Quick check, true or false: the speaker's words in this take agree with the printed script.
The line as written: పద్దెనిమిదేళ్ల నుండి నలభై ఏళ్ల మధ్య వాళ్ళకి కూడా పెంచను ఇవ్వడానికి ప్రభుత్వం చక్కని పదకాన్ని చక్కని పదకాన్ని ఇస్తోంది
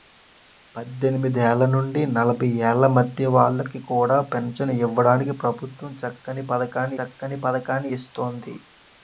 true